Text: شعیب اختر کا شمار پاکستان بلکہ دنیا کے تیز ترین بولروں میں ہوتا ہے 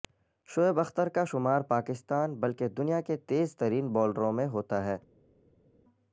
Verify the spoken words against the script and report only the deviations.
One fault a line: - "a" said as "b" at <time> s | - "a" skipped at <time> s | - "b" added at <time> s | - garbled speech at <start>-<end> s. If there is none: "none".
none